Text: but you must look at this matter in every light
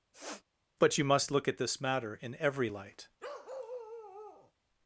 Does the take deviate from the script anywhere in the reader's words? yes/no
no